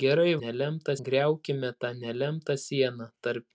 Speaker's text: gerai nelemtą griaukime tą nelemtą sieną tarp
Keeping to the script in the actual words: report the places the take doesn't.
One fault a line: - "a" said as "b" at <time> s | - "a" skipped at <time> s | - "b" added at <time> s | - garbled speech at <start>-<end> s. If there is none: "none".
none